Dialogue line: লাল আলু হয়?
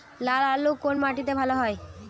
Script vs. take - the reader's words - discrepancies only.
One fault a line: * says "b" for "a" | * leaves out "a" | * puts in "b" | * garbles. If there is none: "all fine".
* puts in "কোন মাটিতে ভালো"